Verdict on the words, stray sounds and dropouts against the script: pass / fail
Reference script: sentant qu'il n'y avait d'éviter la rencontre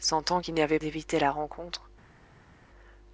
pass